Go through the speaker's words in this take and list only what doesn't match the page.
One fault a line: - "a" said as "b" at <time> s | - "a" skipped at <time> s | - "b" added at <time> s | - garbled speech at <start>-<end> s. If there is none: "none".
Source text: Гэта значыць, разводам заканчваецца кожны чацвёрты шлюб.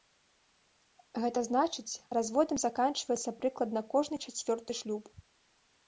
- "прыкладна" added at 3.4 s